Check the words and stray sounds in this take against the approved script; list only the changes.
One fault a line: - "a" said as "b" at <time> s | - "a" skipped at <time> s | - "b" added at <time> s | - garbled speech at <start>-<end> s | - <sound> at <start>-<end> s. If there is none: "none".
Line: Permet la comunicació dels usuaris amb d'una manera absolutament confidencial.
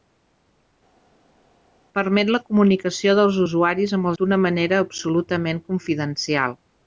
none